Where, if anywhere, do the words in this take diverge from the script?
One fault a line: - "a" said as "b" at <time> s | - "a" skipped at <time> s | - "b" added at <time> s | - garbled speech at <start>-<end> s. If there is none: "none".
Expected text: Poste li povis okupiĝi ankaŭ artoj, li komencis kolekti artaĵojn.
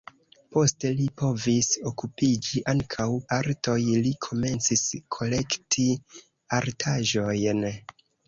none